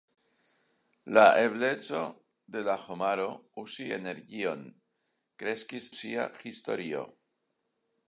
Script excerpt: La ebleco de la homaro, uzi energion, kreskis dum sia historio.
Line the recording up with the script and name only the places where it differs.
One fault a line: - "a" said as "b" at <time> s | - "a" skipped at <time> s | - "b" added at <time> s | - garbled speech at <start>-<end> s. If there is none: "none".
- "dum" skipped at 5.9 s